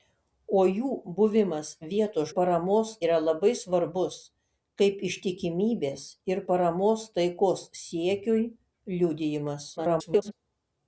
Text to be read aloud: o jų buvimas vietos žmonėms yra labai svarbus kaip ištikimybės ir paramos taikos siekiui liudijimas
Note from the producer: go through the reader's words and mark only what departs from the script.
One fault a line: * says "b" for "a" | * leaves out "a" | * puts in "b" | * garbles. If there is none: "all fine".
* says "paramos" for "žmonėms"
* garbles